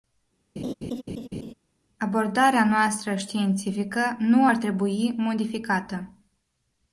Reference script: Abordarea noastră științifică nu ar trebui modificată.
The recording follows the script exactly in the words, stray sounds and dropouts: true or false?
false